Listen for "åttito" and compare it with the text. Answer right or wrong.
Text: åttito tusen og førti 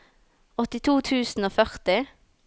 right